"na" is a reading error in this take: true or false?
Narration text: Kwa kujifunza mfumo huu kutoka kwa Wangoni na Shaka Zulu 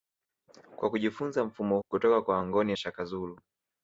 true